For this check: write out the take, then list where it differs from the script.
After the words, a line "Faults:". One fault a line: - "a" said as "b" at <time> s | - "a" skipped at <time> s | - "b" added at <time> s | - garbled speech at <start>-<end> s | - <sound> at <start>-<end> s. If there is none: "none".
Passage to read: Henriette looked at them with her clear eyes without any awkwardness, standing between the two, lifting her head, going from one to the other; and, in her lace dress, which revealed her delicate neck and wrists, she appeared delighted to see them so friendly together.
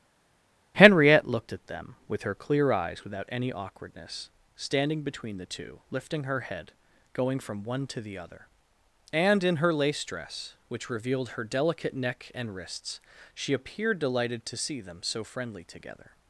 Henriette looked at them with her clear eyes without any awkwardness, standing between the two, lifting her head, going from one to the other; and, in her lace dress, which revealed her delicate neck and wrists, she appeared delighted to see them so friendly together.
Faults:
none